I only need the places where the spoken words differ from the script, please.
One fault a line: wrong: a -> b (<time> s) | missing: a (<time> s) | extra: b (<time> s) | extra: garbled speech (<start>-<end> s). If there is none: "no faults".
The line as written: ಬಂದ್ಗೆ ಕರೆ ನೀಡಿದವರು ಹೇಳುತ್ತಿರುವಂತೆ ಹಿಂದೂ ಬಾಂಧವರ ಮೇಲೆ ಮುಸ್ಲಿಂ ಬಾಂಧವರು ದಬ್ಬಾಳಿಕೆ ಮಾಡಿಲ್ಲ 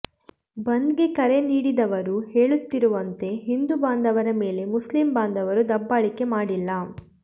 no faults